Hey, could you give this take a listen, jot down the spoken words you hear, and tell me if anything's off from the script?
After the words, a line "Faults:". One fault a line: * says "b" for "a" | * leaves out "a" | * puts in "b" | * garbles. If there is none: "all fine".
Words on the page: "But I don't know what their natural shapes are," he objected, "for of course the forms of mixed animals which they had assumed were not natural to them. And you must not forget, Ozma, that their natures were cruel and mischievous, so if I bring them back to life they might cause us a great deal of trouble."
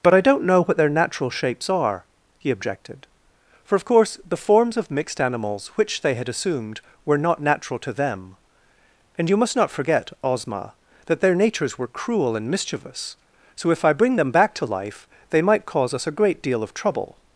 "But I don't know what their natural shapes are," he objected, "for of course the forms of mixed animals which they had assumed were not natural to them. And you must not forget, Ozma, that their natures were cruel and mischievous, so if I bring them back to life they might cause us a great deal of trouble."
Faults:
all fine